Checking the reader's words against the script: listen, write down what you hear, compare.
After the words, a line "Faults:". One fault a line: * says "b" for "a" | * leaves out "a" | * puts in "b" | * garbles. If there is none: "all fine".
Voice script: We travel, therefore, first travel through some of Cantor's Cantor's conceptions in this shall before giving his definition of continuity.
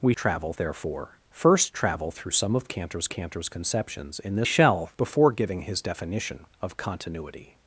We travel, therefore, first travel through some of Cantor's Cantor's conceptions in this shall before giving his definition of continuity.
Faults:
all fine